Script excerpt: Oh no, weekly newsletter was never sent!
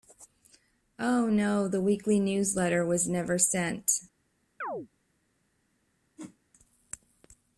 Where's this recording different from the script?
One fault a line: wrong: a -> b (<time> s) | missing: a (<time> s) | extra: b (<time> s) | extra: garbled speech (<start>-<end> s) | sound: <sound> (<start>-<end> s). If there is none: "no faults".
extra: the (1.7 s)
sound: chirp (4.6-4.9 s)
sound: whoosh (6.2-6.4 s)